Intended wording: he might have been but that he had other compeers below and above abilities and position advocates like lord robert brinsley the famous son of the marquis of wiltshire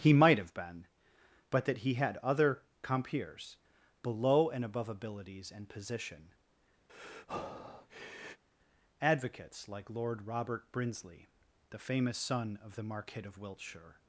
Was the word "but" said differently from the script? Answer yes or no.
no